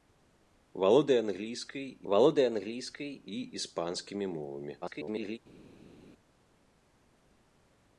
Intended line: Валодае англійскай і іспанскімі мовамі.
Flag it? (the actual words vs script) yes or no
yes